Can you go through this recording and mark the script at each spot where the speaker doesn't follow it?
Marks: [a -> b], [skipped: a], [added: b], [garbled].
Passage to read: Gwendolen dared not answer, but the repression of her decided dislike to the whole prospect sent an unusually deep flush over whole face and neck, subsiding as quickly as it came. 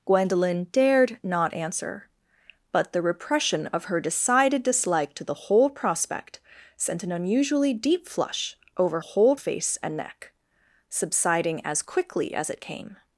Gwendolen dared not answer, but the repression of her decided dislike to the whole prospect sent an unusually deep flush over whole face and neck, subsiding as quickly as it came.